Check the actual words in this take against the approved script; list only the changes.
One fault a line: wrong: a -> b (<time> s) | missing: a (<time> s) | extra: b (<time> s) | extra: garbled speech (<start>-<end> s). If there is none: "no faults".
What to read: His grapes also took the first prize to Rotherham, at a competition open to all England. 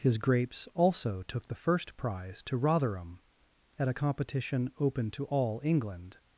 no faults